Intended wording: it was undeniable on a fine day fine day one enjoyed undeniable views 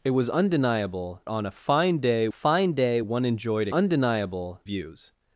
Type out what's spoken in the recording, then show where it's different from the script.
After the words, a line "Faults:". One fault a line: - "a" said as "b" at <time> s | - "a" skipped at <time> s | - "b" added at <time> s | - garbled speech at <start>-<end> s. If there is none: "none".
it was undeniable on a fine day fine day one enjoyed undeniable views
Faults:
none